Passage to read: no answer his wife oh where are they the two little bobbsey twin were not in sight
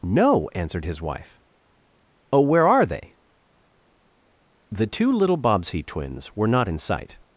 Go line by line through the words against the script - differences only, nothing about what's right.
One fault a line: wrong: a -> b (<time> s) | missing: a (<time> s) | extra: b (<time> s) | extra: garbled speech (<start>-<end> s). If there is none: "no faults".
wrong: answer -> answered (0.6 s)
wrong: twin -> twins (5.8 s)